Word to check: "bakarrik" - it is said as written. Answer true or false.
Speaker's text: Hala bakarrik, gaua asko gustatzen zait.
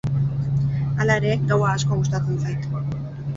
false